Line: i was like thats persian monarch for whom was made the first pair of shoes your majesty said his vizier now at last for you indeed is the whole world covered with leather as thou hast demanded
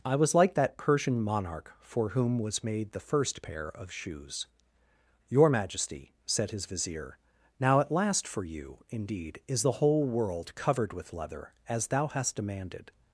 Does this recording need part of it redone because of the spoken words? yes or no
yes